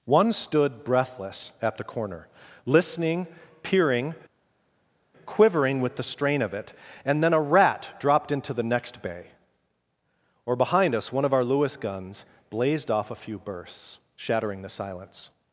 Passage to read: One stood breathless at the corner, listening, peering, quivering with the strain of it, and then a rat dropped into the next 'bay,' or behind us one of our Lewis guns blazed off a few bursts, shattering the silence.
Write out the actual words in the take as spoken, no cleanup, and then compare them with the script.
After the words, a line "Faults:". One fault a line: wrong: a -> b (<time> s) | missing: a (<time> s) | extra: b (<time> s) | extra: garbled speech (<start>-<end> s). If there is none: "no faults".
One stood breathless at the corner, listening, peering, quivering with the strain of it, and then a rat dropped into the next 'bay,' or behind us one of our Lewis guns blazed off a few bursts, shattering the silence.
Faults:
no faults